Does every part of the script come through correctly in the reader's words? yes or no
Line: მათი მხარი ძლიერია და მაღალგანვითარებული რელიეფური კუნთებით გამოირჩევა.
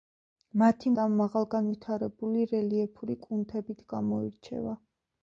no